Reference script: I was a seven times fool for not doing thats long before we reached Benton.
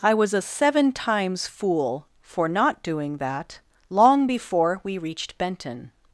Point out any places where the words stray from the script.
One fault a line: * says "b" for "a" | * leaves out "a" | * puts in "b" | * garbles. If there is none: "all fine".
* says "that" for "thats"